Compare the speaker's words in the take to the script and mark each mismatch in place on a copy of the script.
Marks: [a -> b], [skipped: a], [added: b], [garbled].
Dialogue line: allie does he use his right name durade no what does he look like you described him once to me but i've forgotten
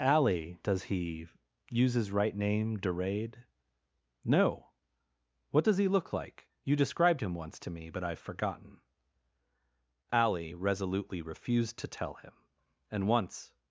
allie does he use his right name durade no what does he look like you described him once to me but i've forgotten [added: allie resolutely refused to tell him and once]